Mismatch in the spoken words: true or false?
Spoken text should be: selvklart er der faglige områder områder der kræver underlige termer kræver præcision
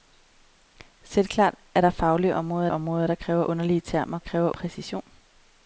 false